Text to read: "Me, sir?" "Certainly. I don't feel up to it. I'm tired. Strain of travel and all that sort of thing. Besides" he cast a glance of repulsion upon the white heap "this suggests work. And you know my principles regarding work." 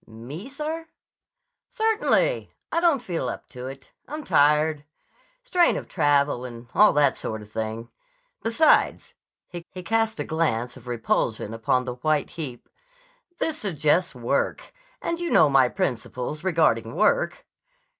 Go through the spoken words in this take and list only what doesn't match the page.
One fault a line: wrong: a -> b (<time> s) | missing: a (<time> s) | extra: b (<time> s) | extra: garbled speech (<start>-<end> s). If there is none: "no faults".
extra: he (9.7 s)